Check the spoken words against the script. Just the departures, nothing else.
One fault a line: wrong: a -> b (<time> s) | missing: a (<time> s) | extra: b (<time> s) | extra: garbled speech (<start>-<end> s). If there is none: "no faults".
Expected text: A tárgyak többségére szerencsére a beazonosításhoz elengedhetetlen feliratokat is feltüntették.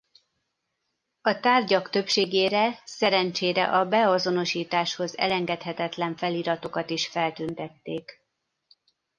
no faults